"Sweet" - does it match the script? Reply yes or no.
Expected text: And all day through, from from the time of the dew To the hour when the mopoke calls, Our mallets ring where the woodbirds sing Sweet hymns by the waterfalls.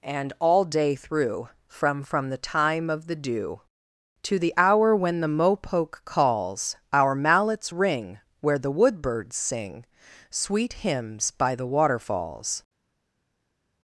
yes